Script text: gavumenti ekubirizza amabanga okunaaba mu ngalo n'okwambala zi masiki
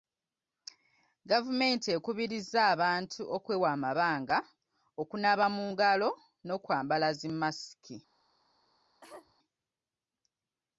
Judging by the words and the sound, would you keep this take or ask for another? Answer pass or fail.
fail